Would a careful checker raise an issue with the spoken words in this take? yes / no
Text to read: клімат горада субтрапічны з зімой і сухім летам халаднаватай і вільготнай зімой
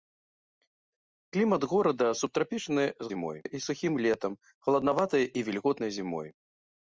no